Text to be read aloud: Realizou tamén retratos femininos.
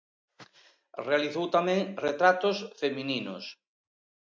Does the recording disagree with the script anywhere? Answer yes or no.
no